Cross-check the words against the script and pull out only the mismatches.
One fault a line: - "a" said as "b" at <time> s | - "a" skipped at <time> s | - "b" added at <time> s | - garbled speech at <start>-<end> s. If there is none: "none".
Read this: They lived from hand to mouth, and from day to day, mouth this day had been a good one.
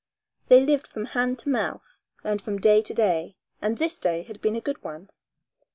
- "mouth" said as "and" at 3.6 s